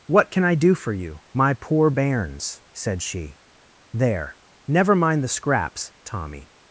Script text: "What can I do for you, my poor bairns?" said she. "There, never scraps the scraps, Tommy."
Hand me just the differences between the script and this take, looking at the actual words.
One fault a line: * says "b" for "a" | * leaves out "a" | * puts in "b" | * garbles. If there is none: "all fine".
* says "mind" for "scraps"